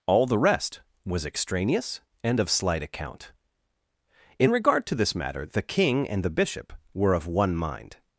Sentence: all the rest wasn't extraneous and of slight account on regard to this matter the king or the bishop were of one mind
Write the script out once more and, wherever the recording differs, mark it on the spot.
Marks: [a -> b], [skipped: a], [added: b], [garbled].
all the rest [wasn't -> was] extraneous and of slight account [on -> in] regard to this matter the king [or -> and] the bishop were of one mind